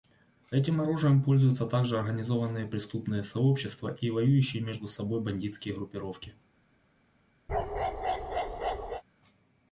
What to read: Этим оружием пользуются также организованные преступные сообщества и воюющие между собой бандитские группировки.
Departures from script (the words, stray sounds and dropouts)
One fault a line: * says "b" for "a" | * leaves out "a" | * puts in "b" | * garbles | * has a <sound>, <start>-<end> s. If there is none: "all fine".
* has a bark, 7.5-9.0 s